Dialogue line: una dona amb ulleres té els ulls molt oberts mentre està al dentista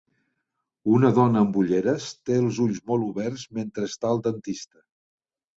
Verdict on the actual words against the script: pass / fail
pass